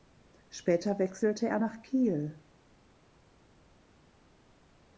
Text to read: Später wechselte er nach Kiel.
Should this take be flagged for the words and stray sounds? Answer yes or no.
no